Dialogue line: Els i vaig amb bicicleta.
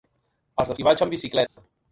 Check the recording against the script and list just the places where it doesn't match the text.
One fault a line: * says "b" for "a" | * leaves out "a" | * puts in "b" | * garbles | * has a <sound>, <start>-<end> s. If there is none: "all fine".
* has a dropout, 1.5-1.6 s